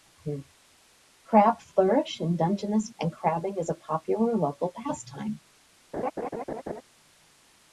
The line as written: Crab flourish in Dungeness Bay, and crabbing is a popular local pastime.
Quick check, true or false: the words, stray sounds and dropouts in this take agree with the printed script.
false